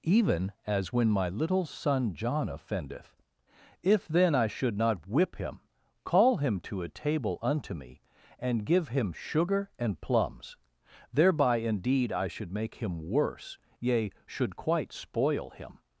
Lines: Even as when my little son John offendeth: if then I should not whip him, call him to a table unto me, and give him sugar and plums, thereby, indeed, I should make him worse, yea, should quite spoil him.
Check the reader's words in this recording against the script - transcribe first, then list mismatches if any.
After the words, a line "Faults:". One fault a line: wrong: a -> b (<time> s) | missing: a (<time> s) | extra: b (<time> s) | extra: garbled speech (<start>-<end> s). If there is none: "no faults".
Even as when my little son John offendeth: if then I should not whip him, call him to a table unto me, and give him sugar and plums, thereby, indeed, I should make him worse, yea, should quite spoil him.
Faults:
no faults